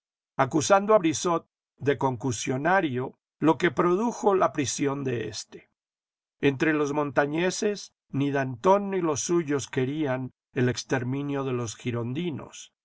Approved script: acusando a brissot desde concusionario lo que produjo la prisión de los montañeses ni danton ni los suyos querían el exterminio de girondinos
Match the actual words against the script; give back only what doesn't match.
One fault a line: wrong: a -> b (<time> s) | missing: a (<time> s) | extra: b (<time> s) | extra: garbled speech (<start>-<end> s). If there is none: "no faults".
wrong: desde -> de (1.8 s)
extra: éste entre (5.3 s)
extra: los (11.5 s)